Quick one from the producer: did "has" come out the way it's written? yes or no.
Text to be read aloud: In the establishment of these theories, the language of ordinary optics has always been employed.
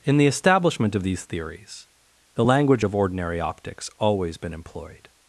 no